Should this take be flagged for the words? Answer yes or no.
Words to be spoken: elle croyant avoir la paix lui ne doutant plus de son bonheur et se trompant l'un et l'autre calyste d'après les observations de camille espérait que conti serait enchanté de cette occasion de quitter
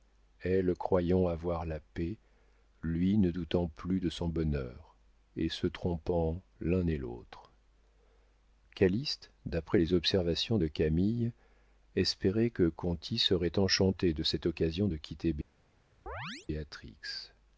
no